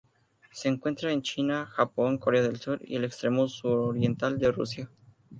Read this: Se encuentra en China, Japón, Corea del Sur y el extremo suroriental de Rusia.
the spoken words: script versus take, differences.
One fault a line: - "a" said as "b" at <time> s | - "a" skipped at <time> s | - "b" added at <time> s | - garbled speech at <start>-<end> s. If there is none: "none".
none